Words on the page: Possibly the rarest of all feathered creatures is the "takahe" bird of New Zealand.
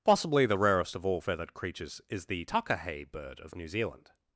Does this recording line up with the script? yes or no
yes